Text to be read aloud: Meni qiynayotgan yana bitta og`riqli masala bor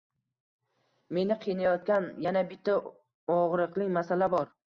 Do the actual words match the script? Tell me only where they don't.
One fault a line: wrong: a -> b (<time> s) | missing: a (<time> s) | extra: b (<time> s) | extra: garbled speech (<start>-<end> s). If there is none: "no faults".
no faults